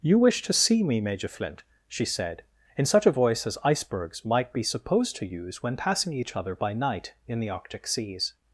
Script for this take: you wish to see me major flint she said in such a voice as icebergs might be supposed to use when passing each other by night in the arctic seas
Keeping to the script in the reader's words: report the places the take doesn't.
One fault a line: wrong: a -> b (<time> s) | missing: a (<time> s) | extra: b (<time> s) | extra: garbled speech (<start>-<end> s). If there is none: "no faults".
no faults